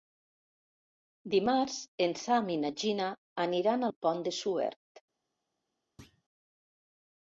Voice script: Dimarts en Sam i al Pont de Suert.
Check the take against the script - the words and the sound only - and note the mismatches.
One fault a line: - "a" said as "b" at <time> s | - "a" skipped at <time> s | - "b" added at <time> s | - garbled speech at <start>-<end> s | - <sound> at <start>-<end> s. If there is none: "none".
- "na Gina aniran" added at 2.6 s
- thud at 6.0-6.2 s